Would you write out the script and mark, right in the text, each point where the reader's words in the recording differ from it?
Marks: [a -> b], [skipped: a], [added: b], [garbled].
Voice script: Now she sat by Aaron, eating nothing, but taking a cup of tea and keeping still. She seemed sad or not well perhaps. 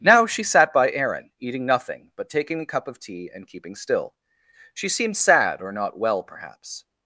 Now she sat by Aaron, eating nothing, but taking a cup of tea and keeping still. She seemed sad or not well perhaps.